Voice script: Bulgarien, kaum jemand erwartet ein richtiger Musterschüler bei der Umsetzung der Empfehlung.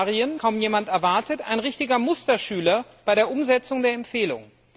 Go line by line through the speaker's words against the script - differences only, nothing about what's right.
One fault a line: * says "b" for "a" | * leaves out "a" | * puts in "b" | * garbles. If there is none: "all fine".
all fine